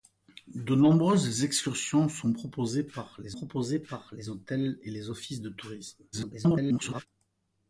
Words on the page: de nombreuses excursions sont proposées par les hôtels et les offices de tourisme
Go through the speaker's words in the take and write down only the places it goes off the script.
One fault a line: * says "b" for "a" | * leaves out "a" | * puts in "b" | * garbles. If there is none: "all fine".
* puts in "proposées par les"
* garbles